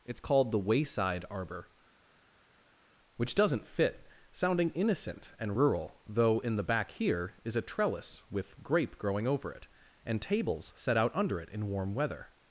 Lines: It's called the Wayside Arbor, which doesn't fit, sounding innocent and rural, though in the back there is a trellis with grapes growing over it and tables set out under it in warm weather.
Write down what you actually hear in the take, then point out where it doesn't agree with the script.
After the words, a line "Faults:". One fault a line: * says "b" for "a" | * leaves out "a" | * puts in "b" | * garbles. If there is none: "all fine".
It's called the Wayside Arbor, which doesn't fit, sounding innocent and rural, though in the back here is a trellis with grape growing over it and tables set out under it in warm weather.
Faults:
* says "here" for "there"
* says "grape" for "grapes"